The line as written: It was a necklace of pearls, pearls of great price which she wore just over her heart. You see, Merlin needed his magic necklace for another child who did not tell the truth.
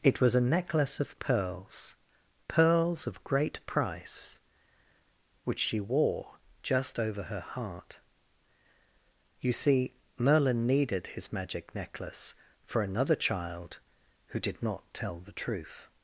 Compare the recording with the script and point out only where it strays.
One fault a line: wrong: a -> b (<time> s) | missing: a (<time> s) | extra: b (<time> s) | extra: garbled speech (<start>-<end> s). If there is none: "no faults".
no faults